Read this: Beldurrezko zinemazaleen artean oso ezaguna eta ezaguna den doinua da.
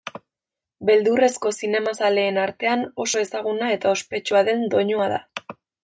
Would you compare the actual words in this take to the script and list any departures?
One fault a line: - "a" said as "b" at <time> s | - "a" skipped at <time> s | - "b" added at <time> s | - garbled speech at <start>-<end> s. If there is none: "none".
- "ezaguna" said as "ospetsua" at 4.0 s